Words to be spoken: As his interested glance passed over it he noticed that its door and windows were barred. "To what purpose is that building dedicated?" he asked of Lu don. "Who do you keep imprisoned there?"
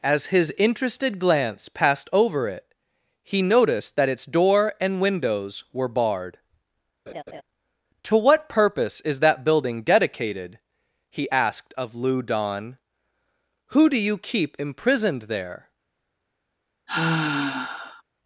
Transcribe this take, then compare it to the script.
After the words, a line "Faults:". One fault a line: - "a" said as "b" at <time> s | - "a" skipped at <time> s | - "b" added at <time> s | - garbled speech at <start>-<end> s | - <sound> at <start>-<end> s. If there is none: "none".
As his interested glance passed over it he noticed that its door and windows were barred. "To what purpose is that building dedicated?" he asked of Lu don. "Who do you keep imprisoned there?"
Faults:
- laugh at 7.1-7.4 s
- sigh at 16.9-18.0 s